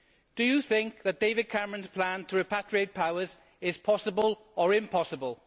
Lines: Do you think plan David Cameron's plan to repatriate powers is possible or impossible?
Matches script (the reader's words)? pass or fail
fail